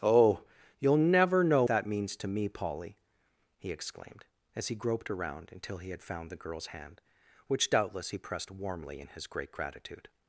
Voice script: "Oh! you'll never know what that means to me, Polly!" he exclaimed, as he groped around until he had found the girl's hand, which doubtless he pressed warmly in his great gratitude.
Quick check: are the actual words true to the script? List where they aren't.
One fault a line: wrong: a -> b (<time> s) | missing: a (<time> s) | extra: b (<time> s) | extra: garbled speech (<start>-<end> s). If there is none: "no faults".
missing: what (1.6 s)